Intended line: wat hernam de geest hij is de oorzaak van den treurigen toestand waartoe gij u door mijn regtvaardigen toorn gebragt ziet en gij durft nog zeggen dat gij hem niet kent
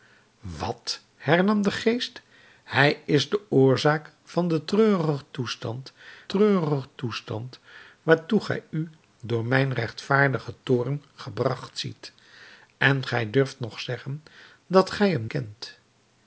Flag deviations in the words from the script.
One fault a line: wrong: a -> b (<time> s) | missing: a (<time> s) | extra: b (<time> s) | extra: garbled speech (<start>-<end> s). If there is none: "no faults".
extra: treurigen toestand (6.3 s)
missing: niet (15.3 s)